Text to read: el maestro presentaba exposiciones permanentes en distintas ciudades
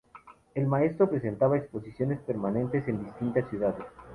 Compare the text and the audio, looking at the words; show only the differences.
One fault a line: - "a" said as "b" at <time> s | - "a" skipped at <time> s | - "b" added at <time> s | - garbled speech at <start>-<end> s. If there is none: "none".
none